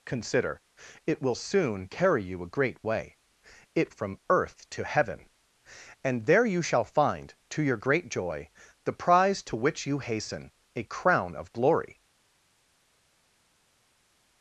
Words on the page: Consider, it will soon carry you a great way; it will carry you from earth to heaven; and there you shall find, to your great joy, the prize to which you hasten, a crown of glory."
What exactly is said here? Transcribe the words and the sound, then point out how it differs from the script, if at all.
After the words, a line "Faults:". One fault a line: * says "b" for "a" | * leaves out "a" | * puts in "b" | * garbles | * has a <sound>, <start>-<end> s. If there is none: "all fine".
Consider, it will soon carry you a great way; it from earth to heaven; and there you shall find, to your great joy, the prize to which you hasten, a crown of glory."
Faults:
* leaves out "will carry you"